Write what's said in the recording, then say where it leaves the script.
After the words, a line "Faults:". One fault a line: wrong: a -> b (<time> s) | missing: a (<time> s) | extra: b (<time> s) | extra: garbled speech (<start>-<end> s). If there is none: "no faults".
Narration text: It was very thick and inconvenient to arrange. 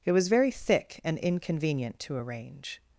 It was very thick and inconvenient to arrange.
Faults:
no faults